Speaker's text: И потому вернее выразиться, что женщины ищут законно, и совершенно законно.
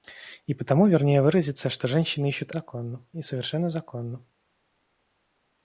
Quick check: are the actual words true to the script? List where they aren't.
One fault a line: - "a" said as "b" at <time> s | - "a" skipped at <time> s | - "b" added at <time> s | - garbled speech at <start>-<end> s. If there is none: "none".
none